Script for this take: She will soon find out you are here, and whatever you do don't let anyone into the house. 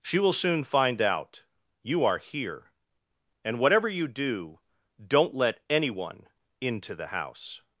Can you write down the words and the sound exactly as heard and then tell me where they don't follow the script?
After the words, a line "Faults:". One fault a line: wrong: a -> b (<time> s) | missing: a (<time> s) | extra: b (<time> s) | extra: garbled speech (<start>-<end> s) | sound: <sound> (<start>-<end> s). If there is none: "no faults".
She will soon find out you are here, and whatever you do don't let anyone into the house.
Faults:
no faults